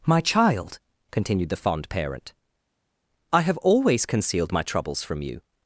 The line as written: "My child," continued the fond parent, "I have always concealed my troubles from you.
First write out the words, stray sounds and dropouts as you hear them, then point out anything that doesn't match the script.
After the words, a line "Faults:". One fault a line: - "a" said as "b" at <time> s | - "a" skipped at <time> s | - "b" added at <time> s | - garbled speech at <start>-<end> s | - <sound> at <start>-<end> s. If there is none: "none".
"My child," continued the fond parent, "I have always concealed my troubles from you.
Faults:
none